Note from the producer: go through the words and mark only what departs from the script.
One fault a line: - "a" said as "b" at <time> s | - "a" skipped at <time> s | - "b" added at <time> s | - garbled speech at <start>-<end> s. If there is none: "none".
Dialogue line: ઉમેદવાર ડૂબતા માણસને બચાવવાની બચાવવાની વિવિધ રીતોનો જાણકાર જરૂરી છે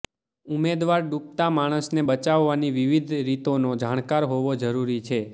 - "બચાવવાની" skipped at 2.7 s
- "હોવો" added at 4.3 s